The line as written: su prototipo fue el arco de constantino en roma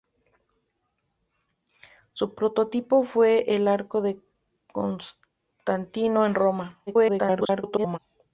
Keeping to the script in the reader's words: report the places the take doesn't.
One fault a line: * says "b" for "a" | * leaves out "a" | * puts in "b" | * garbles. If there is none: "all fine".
* garbles